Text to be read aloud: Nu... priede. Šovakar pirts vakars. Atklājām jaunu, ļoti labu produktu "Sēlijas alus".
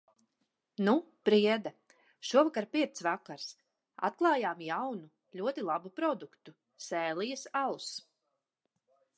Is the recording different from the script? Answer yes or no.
no